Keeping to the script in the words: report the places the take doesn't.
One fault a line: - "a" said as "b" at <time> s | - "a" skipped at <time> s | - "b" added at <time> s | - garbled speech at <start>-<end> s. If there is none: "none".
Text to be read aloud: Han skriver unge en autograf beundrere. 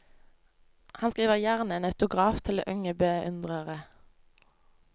- "unge" said as "gjerne" at 1.4 s
- "til unge" added at 2.4 s